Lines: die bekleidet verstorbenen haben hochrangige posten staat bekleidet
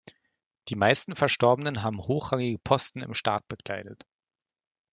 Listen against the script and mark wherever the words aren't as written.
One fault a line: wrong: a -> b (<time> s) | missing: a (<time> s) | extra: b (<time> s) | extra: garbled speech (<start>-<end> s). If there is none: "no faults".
wrong: bekleidet -> meisten (0.8 s)
extra: im (3.0 s)